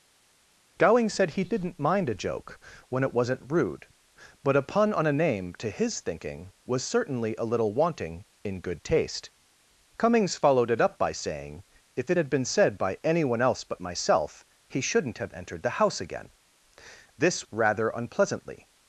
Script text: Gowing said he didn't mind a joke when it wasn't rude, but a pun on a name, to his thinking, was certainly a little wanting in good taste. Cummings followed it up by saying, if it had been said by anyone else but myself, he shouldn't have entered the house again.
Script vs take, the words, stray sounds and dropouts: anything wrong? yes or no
yes